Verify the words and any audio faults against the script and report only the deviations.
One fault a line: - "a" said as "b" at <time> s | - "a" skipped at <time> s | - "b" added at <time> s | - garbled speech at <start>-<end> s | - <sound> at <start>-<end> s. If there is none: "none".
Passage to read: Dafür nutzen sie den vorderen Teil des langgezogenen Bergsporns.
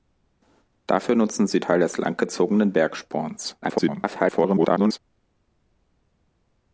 - "den vorderen" skipped at 1.6 s
- garbled speech at 3.6-5.0 s